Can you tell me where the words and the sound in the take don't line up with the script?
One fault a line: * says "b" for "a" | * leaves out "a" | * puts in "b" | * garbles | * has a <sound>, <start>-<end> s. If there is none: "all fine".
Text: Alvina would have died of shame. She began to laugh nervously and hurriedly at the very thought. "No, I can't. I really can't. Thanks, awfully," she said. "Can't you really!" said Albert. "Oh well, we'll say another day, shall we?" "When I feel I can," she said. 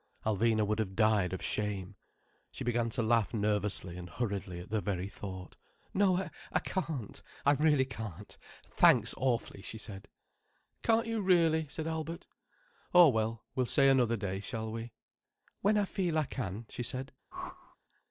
* has a whoosh, 17.3-17.8 s